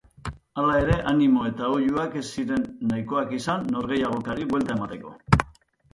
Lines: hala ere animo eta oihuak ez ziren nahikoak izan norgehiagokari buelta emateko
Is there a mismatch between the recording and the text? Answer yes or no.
no